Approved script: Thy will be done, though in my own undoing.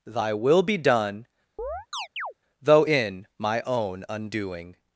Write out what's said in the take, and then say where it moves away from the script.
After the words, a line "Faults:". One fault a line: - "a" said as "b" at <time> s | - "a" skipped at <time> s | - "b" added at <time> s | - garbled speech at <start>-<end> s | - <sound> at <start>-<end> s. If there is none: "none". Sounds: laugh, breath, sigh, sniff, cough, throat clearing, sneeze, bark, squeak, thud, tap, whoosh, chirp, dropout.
Thy will be done, though in my own undoing.
Faults:
- chirp at 1.6-2.3 s